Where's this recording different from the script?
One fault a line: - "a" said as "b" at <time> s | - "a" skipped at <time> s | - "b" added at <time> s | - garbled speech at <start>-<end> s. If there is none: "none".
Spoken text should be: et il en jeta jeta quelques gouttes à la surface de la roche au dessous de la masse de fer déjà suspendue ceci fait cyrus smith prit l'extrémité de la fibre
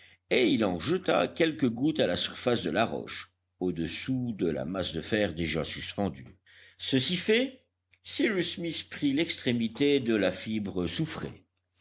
- "jeta" skipped at 1.3 s